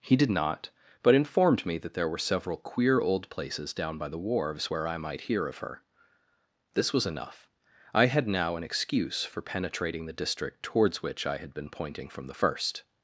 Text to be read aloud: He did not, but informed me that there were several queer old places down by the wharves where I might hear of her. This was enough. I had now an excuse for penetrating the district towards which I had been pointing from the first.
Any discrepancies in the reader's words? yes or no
no